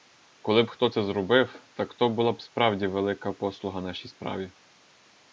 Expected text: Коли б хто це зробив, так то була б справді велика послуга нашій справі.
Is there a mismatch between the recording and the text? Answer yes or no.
no